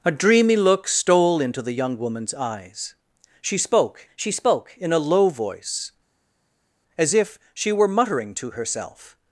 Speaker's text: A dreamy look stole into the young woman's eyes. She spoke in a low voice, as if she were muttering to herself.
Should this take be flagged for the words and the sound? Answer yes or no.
yes